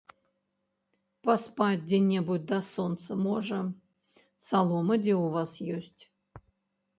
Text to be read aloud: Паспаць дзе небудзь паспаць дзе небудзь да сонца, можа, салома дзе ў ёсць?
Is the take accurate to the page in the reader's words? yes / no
no